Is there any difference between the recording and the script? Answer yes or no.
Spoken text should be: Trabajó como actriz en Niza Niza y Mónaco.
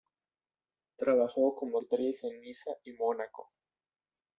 yes